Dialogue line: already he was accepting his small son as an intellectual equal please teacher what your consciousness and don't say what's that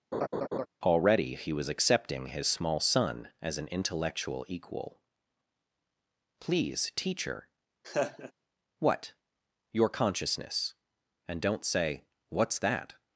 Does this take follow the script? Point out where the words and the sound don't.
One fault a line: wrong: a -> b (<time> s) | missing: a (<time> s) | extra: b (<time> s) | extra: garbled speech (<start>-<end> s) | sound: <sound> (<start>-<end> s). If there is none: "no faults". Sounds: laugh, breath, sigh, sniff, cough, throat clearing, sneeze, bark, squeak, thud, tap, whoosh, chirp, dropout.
sound: laugh (0.1-0.7 s)
sound: laugh (7.8-8.3 s)